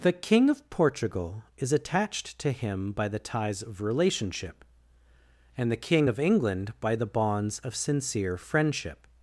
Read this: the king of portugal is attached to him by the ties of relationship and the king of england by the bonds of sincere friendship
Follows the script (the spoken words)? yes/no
yes